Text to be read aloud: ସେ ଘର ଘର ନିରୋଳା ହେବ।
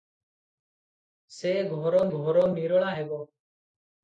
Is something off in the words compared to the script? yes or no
no